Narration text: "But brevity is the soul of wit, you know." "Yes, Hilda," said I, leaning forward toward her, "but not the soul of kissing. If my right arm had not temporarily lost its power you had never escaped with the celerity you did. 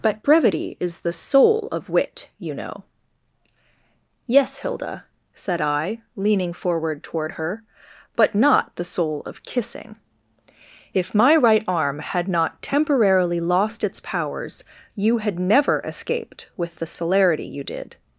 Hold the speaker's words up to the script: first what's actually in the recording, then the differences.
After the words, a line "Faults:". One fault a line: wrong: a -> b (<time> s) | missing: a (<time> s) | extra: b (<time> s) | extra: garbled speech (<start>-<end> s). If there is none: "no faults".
"But brevity is the soul of wit, you know." "Yes, Hilda," said I, leaning forward toward her, "but not the soul of kissing. If my right arm had not temporarily lost its powers you had never escaped with the celerity you did.
Faults:
wrong: power -> powers (14.0 s)